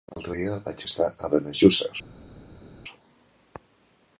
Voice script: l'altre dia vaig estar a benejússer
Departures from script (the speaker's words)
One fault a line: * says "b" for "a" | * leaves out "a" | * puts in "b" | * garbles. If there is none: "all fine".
all fine